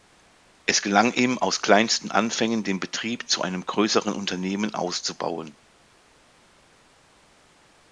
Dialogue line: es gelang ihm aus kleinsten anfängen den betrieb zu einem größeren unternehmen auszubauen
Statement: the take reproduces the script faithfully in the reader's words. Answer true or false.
true